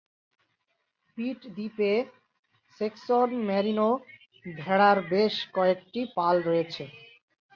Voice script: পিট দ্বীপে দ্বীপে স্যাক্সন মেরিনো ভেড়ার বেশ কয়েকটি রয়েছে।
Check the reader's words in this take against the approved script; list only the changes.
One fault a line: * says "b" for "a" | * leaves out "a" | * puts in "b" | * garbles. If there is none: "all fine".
* leaves out "দ্বীপে"
* puts in "পাল"